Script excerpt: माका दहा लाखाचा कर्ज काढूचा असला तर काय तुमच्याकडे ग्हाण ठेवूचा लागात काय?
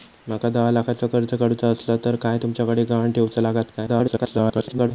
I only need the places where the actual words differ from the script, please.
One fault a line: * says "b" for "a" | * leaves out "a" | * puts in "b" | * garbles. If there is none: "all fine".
* garbles